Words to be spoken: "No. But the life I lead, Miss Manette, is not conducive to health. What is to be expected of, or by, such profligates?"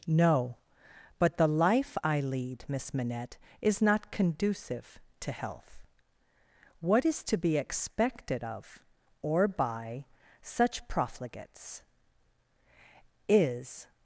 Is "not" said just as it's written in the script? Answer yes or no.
yes